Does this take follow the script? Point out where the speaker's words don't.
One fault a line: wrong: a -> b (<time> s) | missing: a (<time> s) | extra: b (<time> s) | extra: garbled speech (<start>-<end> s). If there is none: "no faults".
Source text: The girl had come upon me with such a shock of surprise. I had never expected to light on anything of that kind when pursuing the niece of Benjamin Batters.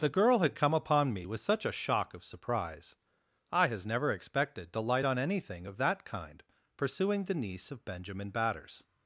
wrong: had -> has (3.7 s)
missing: when (6.4 s)